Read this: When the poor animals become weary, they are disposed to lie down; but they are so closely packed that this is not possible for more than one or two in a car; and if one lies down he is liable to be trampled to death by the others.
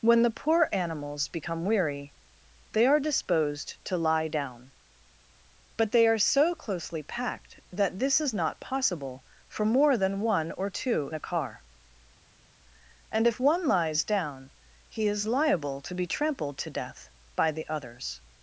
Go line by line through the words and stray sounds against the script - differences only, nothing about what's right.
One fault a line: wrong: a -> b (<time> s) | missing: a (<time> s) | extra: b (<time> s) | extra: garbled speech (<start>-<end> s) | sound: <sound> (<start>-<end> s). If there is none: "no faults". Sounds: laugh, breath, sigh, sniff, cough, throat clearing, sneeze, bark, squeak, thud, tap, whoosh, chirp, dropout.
missing: in (11.1 s)